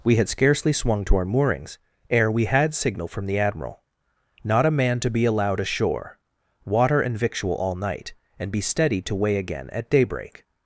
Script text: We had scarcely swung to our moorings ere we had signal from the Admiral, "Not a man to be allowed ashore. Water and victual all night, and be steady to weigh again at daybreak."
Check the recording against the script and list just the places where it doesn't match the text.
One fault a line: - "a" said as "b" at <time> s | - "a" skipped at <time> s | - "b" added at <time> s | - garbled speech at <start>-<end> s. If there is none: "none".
none